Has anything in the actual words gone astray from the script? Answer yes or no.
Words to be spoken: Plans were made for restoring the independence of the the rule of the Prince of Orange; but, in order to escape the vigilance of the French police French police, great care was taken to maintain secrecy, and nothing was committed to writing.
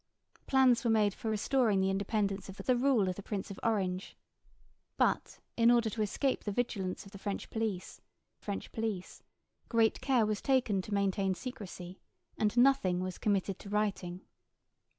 no